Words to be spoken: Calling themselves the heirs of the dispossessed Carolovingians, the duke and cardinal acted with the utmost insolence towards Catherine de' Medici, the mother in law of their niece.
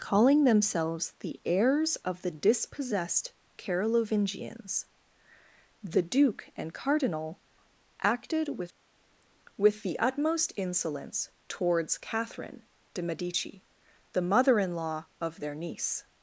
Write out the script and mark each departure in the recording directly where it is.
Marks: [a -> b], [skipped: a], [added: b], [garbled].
Calling themselves the heirs of the dispossessed Carolovingians, the duke and cardinal acted with [added: with] the utmost insolence towards Catherine de' Medici, the mother in law of their niece.